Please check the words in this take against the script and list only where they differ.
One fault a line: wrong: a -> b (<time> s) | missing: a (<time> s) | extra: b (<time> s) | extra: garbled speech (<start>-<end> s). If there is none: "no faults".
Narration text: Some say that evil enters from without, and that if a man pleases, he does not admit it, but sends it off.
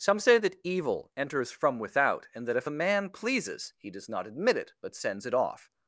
no faults